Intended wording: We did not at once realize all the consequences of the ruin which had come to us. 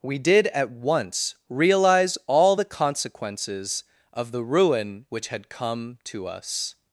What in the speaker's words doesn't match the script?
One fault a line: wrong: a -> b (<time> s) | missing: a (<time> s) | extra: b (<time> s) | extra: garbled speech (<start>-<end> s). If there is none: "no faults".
missing: not (0.5 s)